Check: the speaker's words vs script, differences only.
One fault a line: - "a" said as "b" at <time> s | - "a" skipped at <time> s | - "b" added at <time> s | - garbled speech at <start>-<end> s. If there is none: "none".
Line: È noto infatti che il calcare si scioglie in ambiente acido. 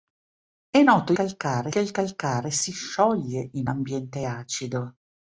- "infatti" said as "calcare" at 1.1 s